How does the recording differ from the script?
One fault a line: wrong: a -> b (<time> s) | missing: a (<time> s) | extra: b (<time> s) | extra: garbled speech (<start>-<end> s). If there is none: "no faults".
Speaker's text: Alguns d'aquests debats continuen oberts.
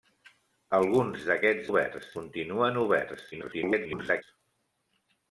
wrong: debats -> oberts (1.7 s)
extra: garbled speech (3.3-4.2 s)